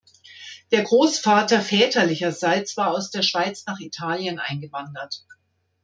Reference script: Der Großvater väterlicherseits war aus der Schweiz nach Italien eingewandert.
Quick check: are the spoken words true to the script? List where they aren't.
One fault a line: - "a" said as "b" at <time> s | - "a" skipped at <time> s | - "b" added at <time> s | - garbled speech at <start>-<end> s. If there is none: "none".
none